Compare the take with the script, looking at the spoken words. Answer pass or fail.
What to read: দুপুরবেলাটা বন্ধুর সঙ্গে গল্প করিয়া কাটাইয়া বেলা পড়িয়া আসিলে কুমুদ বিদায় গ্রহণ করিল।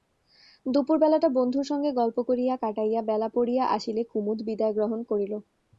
pass